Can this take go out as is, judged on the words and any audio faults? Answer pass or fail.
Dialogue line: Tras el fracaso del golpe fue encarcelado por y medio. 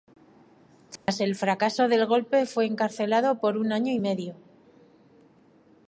fail